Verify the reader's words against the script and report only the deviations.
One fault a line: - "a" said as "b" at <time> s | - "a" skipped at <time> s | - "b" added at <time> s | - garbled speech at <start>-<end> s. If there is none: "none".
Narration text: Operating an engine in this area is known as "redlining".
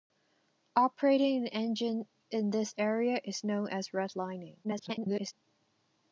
- garbled speech at 4.6-5.3 s